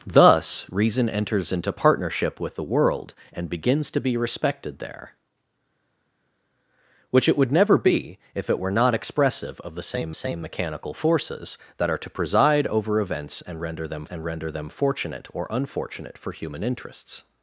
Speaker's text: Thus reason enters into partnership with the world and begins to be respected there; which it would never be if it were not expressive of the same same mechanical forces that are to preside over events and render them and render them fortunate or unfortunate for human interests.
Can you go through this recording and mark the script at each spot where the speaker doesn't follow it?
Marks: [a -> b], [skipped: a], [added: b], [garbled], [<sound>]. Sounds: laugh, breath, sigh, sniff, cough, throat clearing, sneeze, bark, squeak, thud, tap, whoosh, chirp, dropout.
Thus reason enters into partnership with the world and begins to be respected there; which it would never be if it were not expressive of the same same mechanical forces that are to preside over events and render them and render them fortunate or unfortunate for human interests.